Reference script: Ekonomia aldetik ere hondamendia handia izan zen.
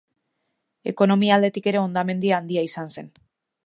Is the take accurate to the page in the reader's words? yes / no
yes